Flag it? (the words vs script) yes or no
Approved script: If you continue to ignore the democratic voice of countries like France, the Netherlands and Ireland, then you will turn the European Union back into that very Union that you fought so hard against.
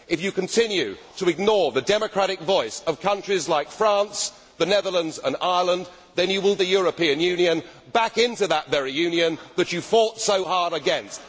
yes